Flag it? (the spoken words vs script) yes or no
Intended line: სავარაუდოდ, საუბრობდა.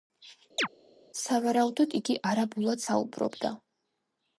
yes